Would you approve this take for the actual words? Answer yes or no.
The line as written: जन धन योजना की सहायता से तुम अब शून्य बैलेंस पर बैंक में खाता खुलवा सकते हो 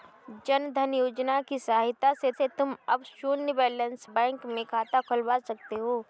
no